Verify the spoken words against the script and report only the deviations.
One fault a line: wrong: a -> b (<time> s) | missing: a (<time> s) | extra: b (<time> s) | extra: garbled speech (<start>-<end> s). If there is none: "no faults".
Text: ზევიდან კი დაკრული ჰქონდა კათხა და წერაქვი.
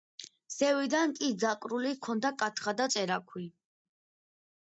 no faults